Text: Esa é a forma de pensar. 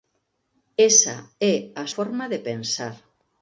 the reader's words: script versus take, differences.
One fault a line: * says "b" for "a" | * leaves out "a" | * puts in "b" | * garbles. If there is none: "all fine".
all fine